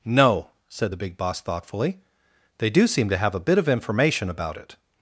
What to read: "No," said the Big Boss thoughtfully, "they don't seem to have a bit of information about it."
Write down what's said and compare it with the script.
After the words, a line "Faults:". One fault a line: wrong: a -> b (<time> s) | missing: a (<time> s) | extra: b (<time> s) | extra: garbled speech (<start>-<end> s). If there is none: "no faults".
"No," said the Big Boss thoughtfully, "they do seem to have a bit of information about it."
Faults:
wrong: don't -> do (2.7 s)